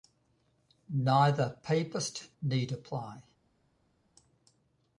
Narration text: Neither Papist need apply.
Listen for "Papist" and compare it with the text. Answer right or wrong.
right